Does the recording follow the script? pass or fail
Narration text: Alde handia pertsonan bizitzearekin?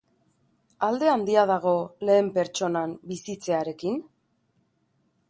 fail